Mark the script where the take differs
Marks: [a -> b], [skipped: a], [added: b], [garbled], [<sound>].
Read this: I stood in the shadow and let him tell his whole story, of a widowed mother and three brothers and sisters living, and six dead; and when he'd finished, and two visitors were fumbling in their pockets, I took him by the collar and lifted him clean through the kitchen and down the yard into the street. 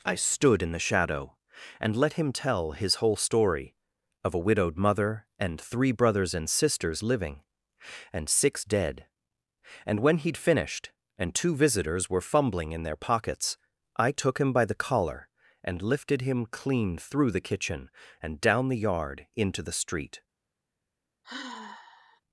I stood in the shadow and let him tell his whole story, of a widowed mother and three brothers and sisters living, and six dead; and when he'd finished, and two visitors were fumbling in their pockets, I took him by the collar and lifted him clean through the kitchen and down the yard into the street. [sigh]